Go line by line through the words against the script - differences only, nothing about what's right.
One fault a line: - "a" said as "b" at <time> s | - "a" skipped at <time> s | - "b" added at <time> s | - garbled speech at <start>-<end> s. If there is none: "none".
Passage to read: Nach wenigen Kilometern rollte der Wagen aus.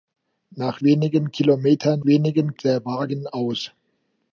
- "rollte" said as "wenigen" at 2.0 s